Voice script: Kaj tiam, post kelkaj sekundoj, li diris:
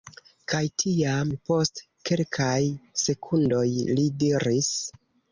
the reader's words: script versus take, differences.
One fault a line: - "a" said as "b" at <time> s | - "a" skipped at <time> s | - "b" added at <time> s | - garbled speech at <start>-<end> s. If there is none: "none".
none